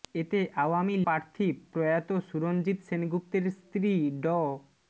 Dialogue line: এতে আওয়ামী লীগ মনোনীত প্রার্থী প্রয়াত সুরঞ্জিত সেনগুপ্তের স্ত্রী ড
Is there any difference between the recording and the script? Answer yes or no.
yes